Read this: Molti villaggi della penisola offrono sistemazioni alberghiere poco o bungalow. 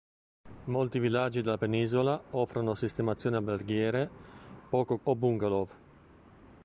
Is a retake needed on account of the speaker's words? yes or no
no